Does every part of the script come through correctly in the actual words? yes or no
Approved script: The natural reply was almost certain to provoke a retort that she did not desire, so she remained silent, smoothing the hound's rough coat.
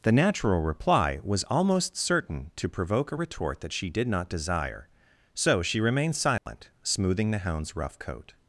yes